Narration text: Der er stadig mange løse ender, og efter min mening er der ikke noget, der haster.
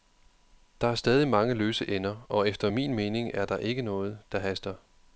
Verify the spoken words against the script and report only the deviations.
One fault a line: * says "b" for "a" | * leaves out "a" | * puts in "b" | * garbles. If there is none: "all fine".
all fine